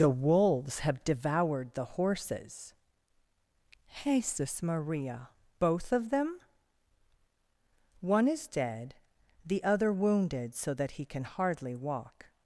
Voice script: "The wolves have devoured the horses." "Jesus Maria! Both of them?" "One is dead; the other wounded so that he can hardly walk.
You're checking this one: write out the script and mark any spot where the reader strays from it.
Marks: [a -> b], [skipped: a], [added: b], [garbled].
"The wolves have devoured the horses." "Jesus Maria! Both of them?" "One is dead; the other wounded so that he can hardly walk.